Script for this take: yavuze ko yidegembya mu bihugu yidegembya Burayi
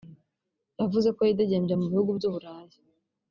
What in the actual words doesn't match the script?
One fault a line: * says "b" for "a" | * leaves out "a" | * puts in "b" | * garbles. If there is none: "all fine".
* says "by'u" for "yidegembya"